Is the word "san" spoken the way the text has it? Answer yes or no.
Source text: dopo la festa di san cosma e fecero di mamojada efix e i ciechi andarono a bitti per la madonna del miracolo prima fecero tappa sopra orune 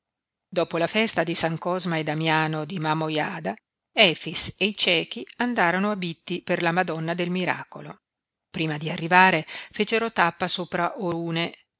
yes